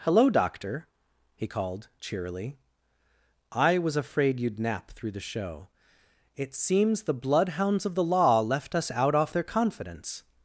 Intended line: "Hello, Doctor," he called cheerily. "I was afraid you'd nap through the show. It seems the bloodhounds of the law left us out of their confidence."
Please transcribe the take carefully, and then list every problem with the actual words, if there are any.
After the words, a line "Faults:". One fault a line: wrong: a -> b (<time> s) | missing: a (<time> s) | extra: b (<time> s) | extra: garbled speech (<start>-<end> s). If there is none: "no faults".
"Hello, Doctor," he called cheerily. "I was afraid you'd nap through the show. It seems the bloodhounds of the law left us out off their confidence."
Faults:
wrong: of -> off (9.1 s)